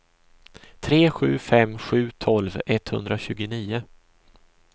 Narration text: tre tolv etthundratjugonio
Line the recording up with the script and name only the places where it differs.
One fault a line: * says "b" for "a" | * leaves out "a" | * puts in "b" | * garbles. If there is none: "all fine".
* puts in "sju fem sju"